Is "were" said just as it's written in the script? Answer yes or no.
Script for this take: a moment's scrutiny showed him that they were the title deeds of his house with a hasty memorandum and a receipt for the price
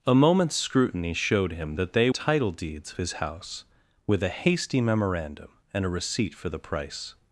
no